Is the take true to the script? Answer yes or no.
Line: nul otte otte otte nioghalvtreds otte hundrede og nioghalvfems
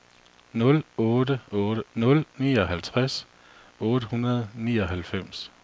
no